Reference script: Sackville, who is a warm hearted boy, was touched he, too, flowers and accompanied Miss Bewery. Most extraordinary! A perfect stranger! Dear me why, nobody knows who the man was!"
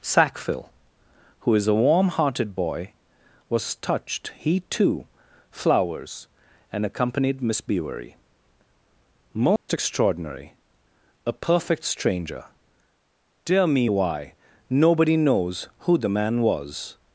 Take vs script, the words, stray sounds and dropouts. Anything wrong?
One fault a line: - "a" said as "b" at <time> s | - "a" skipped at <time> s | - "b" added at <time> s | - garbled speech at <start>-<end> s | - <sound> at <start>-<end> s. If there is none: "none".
- dropout at 9.6-9.7 s